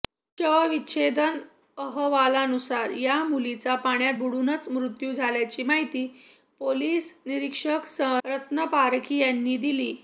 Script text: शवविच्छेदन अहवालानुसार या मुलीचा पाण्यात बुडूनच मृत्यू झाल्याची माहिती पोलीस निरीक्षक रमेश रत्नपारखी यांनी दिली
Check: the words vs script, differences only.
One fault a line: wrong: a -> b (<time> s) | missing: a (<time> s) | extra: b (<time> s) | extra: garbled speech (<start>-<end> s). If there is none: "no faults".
missing: रमेश (8.0 s)